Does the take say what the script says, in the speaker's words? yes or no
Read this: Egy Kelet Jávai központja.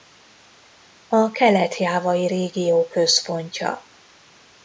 no